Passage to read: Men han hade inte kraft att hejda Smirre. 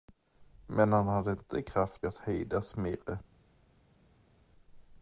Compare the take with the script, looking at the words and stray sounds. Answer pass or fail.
pass